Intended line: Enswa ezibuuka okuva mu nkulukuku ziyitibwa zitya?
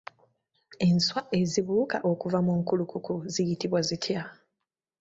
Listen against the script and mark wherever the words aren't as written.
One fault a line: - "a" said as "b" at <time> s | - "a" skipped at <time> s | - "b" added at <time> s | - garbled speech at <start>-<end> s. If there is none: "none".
none